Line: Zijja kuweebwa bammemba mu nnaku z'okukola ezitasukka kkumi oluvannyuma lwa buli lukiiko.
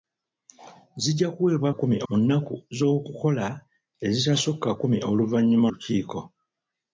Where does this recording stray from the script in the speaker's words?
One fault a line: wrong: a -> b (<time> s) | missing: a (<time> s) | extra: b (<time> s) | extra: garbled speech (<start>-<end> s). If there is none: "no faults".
wrong: bammemba -> kkumi (1.7 s)
missing: lwa buli (5.7 s)